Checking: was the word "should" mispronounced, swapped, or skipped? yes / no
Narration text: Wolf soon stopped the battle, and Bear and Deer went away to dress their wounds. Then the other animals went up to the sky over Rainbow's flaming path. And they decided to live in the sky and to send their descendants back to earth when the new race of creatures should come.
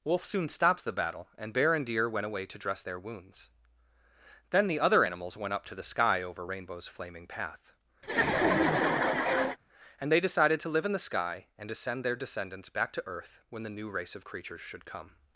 no